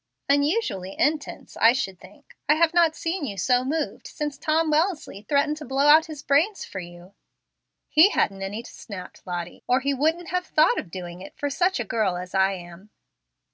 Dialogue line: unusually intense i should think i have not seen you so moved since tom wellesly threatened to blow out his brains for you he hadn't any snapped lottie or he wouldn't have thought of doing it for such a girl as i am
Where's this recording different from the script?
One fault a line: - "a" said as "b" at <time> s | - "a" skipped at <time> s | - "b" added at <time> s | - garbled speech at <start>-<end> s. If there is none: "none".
none